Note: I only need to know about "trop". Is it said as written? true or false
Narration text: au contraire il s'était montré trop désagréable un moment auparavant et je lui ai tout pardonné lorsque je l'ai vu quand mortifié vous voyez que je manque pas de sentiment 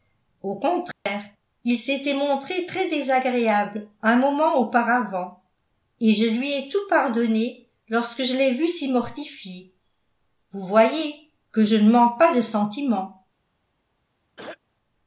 false